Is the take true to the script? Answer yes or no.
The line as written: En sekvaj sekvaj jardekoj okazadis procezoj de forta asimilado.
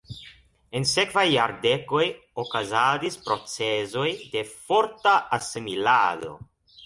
no